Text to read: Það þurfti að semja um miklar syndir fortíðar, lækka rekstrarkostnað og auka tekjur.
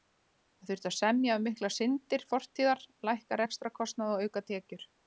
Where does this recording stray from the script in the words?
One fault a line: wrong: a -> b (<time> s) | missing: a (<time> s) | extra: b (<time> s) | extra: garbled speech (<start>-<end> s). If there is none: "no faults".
no faults